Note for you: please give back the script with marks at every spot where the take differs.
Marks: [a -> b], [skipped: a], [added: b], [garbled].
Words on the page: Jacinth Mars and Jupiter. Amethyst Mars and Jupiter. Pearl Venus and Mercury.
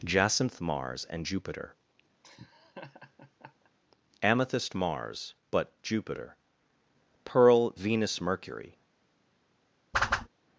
Jacinth Mars and Jupiter. Amethyst Mars [and -> but] Jupiter. Pearl Venus [skipped: and] Mercury.